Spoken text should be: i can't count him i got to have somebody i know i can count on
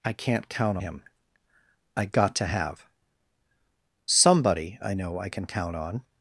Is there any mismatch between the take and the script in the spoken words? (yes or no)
no